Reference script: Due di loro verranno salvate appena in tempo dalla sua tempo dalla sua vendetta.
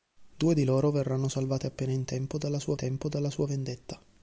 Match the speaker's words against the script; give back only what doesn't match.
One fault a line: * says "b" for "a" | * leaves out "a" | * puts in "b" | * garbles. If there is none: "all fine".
all fine